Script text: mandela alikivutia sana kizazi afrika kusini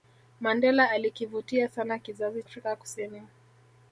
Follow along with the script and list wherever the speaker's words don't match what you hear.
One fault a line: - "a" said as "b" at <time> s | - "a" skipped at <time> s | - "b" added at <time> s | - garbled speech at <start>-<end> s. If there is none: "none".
none